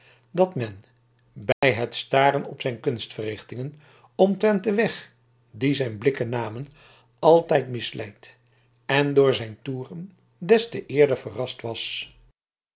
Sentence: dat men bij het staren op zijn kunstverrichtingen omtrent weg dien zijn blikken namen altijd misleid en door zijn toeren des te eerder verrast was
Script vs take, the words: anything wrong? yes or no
yes